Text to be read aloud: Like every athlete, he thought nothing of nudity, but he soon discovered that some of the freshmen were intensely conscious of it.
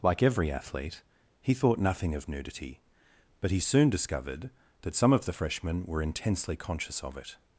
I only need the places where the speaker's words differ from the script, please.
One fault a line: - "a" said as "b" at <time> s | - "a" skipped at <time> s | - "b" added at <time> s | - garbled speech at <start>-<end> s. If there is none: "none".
none